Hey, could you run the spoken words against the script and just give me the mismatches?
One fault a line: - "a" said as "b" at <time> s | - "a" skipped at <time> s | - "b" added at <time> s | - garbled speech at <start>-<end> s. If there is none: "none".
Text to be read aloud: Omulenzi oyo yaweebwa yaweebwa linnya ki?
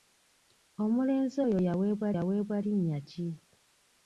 none